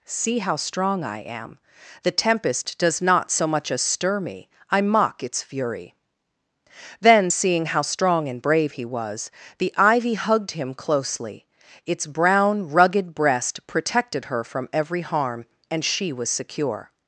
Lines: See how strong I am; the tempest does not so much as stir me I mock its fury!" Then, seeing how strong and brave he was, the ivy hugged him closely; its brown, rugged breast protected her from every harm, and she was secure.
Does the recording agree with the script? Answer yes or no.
yes